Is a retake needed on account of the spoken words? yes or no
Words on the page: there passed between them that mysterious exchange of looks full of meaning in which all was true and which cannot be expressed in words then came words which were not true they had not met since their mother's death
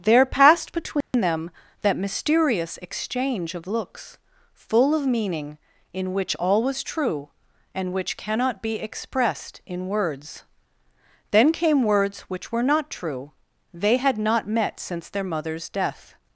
no